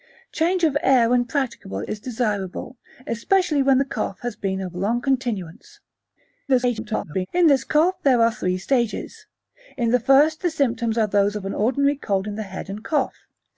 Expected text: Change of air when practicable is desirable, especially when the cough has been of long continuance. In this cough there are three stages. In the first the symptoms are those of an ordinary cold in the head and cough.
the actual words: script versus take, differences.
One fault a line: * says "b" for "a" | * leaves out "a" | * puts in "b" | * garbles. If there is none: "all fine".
* garbles